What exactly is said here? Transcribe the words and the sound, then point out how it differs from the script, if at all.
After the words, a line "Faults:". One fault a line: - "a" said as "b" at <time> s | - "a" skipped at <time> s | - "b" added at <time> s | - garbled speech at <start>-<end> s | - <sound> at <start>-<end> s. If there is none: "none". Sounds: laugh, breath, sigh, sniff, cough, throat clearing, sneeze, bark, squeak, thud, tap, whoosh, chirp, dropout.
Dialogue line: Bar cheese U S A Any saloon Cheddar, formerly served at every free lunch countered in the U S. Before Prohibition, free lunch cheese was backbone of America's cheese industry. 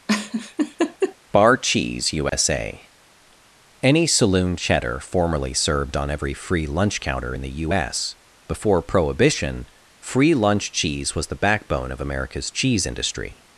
Bar cheese U S A Any saloon Cheddar, formerly served on every free lunch counter in the U S. Before Prohibition, free lunch cheese was the backbone of America's cheese industry.
Faults:
- laugh at 0.1-1.2 s
- dropout at 2.3-2.3 s
- "at" said as "on" at 5.9 s
- "countered" said as "counter" at 7.0 s
- "the" added at 11.3 s